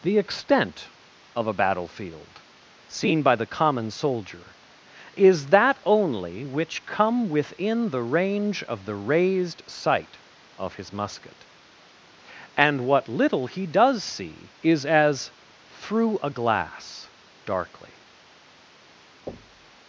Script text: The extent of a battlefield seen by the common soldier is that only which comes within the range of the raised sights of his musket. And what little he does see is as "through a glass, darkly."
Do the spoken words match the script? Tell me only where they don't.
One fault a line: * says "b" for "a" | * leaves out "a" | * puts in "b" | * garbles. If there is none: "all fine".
* says "come" for "comes"
* says "sight" for "sights"